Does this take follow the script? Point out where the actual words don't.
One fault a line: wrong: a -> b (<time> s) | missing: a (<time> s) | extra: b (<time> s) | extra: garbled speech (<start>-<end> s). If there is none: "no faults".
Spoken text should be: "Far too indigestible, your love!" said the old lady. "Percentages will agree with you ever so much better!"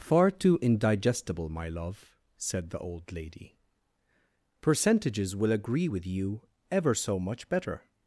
wrong: your -> my (1.5 s)